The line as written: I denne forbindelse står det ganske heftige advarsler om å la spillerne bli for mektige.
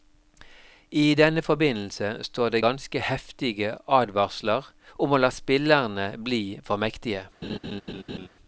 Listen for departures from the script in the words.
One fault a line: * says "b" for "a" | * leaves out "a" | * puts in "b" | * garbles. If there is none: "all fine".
all fine